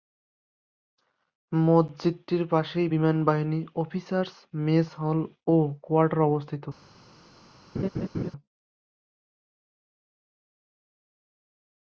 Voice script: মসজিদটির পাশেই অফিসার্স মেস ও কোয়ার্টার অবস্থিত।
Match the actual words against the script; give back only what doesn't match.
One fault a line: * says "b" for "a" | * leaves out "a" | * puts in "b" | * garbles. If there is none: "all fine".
* puts in "বিমানবাহিনী"
* puts in "হল"